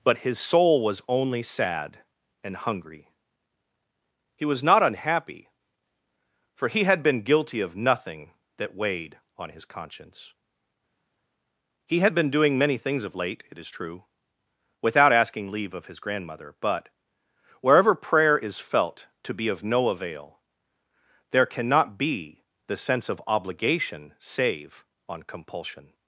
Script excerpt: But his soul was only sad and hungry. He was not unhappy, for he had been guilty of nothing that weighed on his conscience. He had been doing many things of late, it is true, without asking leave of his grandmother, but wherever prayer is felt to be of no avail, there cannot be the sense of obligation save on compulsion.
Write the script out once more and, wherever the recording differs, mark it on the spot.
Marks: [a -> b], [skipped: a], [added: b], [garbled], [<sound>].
But his soul was only sad and hungry. He was not unhappy, for he had been guilty of nothing that weighed on his conscience. He had been doing many things of late, it is true, without asking leave of his grandmother, but wherever prayer is felt to be of no avail, there cannot be the sense of obligation save on compulsion.